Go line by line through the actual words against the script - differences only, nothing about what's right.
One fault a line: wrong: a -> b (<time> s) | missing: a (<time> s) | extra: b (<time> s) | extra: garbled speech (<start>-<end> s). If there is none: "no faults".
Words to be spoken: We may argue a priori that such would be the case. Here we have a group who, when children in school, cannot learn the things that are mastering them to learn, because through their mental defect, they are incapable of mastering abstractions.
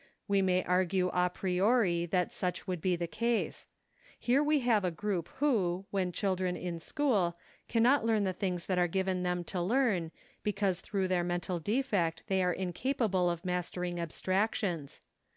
wrong: mastering -> given (8.9 s)